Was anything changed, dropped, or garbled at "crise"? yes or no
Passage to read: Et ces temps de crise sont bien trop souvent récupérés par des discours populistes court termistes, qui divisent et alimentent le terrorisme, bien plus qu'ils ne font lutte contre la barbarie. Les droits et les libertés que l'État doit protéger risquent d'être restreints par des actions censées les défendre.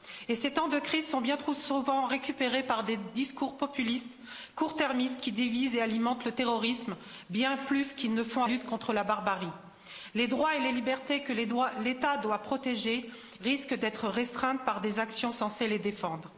no